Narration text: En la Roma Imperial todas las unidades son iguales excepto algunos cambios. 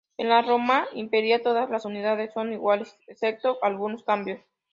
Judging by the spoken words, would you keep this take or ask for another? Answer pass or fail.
pass